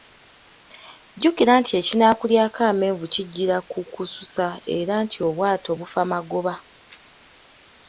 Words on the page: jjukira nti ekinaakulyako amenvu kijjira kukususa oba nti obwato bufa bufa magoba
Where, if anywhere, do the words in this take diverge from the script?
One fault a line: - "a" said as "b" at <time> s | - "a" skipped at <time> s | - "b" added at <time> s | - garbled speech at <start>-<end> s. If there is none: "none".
- "oba" said as "era" at 4.8 s
- "bufa" skipped at 6.0 s